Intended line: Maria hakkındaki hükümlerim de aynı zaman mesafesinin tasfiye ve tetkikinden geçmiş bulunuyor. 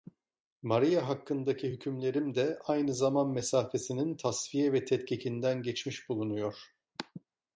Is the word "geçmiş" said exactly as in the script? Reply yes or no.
yes